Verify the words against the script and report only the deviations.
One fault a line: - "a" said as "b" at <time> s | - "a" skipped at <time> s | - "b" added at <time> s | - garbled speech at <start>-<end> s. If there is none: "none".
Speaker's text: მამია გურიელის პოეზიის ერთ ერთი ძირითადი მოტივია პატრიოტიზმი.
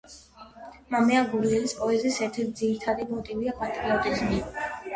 none